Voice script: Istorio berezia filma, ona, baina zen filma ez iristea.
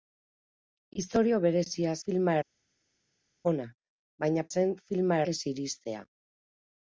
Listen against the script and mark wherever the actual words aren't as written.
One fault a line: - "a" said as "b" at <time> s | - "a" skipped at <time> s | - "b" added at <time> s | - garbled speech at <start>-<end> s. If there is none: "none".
none